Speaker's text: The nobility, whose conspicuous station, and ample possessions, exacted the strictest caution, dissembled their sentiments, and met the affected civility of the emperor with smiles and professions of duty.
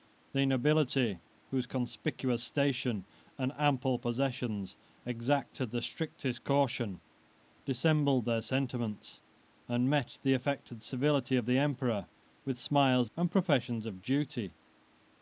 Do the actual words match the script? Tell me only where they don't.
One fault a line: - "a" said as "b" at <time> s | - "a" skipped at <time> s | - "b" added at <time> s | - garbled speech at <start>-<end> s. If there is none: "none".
none